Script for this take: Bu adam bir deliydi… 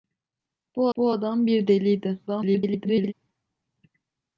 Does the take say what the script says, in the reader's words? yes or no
no